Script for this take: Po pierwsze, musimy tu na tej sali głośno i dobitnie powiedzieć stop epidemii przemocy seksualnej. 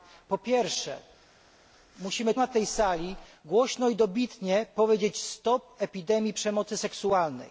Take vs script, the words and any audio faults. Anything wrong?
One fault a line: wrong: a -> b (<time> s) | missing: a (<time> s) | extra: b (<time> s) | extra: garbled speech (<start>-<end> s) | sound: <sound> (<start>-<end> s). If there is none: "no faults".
missing: tu (2.3 s)